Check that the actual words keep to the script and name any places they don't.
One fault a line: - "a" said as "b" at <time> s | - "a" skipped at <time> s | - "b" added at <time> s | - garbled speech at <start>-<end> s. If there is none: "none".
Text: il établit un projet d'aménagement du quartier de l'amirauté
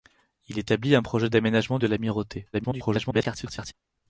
- "du quartier" skipped at 1.8 s
- garbled speech at 2.5-3.7 s